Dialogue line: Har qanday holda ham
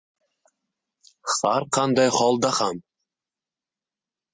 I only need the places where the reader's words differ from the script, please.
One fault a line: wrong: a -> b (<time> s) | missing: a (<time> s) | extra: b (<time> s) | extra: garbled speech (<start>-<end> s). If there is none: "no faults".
no faults